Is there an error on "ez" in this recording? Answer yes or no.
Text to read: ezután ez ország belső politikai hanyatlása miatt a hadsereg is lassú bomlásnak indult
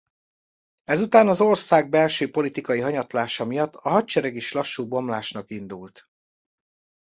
yes